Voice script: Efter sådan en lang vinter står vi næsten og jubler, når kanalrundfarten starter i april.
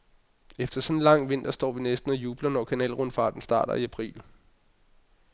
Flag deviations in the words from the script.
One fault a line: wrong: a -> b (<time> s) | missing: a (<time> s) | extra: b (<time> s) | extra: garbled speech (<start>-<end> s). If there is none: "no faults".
no faults